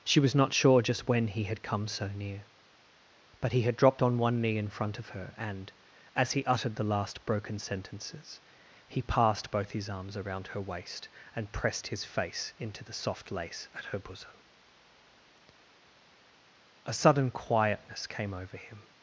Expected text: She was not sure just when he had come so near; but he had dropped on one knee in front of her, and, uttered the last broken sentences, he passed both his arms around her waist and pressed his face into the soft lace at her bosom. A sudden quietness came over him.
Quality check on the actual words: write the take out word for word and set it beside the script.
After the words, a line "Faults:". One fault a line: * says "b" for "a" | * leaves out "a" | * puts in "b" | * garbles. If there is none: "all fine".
She was not sure just when he had come so near; but he had dropped on one knee in front of her, and, as he uttered the last broken sentences, he passed both his arms around her waist and pressed his face into the soft lace at her bosom. A sudden quietness came over him.
Faults:
* puts in "as he"